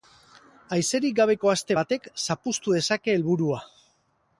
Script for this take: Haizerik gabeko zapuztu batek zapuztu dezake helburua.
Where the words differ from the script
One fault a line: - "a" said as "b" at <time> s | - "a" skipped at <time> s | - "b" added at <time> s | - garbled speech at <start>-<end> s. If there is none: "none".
- "zapuztu" said as "aste" at 1.5 s